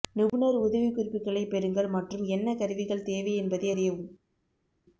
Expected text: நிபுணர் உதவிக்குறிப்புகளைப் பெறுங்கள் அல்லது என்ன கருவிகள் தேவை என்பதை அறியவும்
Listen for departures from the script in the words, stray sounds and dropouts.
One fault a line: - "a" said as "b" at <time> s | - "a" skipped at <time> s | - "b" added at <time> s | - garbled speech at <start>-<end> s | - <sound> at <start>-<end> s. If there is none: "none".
- "அல்லது" said as "மற்றும்" at 1.9 s